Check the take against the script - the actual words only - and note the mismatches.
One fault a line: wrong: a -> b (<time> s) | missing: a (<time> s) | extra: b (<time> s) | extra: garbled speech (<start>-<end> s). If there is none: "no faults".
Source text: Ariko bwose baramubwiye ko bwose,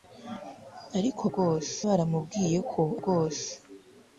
no faults